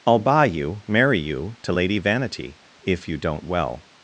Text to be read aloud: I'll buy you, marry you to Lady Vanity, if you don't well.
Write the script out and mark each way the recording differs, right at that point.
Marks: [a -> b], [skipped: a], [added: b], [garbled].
I'll buy you, marry you to Lady Vanity, if you don't well.